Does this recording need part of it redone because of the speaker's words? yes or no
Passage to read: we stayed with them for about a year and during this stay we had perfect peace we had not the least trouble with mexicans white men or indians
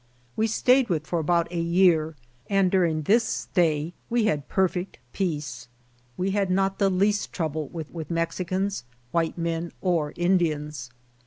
yes